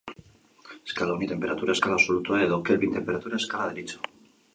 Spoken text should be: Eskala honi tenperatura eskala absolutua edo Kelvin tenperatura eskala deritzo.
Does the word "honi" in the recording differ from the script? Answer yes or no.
no